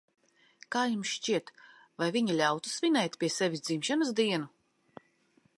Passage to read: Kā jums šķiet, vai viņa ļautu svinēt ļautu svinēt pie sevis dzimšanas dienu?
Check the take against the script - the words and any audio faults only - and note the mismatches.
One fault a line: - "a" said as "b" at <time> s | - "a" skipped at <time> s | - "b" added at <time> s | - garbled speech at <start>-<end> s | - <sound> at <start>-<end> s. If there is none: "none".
- "ļautu svinēt" skipped at 3.2 s